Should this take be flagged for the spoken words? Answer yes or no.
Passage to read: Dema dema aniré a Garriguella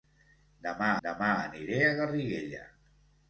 no